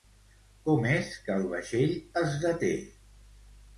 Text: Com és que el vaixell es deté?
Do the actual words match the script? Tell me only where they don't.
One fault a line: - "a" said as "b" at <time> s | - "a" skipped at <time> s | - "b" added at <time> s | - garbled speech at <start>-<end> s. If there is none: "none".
none